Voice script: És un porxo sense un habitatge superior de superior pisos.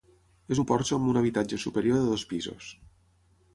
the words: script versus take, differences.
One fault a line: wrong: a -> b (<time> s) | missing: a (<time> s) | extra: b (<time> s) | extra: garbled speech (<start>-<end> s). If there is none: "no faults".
wrong: sense -> amb (1.0 s)
wrong: superior -> dos (2.1 s)